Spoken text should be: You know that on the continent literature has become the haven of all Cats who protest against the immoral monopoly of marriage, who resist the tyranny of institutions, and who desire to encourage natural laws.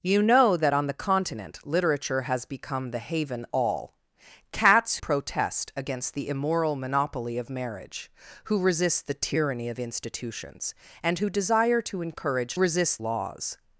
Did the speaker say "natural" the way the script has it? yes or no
no